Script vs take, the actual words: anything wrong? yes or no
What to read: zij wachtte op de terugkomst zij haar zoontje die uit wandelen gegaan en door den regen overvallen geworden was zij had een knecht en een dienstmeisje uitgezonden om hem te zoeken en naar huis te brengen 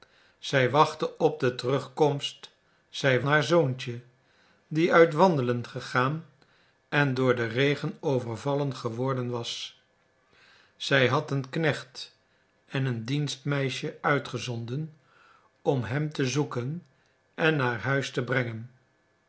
no